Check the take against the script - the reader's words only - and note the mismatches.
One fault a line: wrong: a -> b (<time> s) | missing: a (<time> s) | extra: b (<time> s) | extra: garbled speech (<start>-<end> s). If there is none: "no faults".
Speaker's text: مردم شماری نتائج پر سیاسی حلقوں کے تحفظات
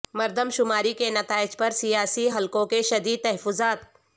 extra: کے (0.9 s)
extra: شدید (2.8 s)